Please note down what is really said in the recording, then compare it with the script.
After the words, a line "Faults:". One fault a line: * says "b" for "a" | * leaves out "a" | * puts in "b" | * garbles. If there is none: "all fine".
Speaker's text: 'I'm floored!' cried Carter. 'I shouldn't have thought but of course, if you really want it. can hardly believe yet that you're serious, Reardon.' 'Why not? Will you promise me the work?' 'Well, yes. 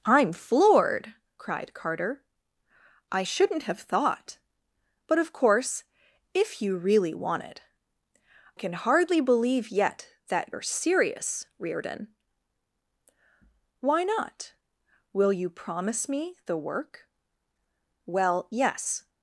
'I'm floored!' cried Carter. 'I shouldn't have thought but of course, if you really want it. can hardly believe yet that you're serious, Reardon.' 'Why not? Will you promise me the work?' 'Well, yes.
Faults:
all fine